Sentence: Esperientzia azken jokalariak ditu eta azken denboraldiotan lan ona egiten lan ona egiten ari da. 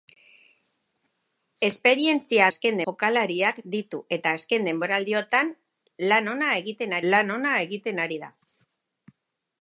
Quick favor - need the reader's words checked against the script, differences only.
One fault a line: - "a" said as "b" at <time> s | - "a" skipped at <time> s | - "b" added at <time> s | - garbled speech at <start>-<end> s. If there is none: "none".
none